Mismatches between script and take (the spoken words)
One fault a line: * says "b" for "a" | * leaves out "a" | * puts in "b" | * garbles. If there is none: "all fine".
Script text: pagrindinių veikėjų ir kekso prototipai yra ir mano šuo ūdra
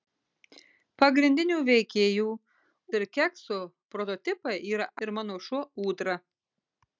all fine